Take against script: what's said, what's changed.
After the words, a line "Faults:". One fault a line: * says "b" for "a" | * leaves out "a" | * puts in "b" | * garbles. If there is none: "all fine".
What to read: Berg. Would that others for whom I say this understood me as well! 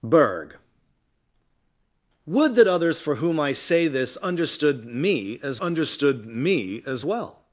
Berg. Would that others for whom I say this understood me as understood me as well!
Faults:
* puts in "understood me as"